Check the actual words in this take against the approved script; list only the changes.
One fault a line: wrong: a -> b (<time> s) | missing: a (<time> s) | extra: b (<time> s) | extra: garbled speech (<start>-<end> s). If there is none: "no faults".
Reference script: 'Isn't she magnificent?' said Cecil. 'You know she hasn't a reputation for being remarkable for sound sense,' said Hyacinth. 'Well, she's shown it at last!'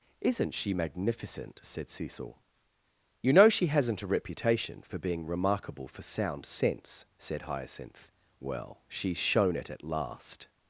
no faults